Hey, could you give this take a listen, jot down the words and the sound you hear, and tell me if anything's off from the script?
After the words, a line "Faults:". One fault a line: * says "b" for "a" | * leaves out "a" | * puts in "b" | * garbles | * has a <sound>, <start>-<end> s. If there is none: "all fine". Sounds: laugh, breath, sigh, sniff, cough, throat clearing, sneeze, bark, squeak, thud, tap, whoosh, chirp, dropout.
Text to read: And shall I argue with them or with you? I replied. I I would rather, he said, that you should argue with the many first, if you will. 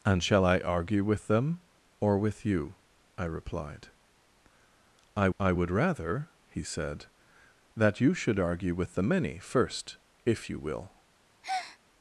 And shall I argue with them or with you? I replied. I I would rather, he said, that you should argue with the many first, if you will.
Faults:
* has a breath, 11.4-11.8 s